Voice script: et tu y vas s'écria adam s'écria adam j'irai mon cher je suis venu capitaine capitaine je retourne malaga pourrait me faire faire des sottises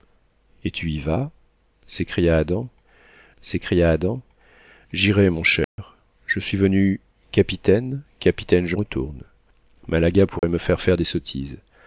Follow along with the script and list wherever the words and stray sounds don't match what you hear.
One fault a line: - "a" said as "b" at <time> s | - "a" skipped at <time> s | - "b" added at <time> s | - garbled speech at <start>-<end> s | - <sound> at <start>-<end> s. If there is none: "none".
- dropout at 5.6-5.8 s
- dropout at 10.4-10.4 s